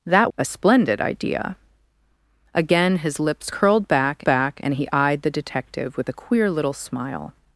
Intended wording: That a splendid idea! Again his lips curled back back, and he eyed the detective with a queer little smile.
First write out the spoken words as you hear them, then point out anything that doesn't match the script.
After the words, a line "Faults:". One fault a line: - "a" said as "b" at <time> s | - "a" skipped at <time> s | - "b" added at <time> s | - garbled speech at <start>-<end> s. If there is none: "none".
That a splendid idea! Again his lips curled back back, and he eyed the detective with a queer little smile.
Faults:
none